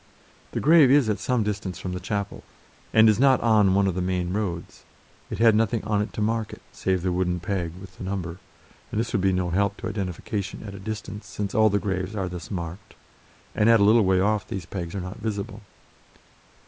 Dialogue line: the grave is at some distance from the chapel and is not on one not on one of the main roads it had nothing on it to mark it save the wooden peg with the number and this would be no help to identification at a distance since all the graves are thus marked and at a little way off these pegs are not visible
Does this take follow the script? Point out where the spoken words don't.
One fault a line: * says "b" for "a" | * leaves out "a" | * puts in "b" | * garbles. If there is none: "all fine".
* leaves out "not on one"